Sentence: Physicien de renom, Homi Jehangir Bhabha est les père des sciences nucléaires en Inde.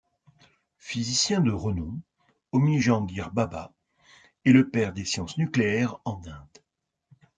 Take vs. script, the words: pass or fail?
fail